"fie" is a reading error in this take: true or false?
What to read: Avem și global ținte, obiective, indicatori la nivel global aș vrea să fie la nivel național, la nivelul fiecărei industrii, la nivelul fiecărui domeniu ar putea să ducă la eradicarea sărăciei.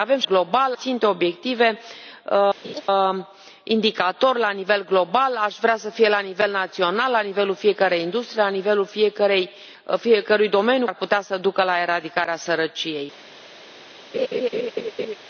false